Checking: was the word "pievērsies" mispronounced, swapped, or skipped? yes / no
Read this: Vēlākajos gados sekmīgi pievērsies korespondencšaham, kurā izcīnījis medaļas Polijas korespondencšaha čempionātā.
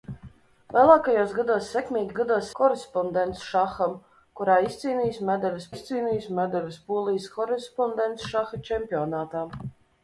yes